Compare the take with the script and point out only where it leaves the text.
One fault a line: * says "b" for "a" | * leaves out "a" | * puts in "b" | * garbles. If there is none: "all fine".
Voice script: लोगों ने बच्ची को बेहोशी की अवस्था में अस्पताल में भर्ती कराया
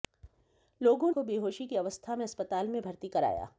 * leaves out "ने बच्ची"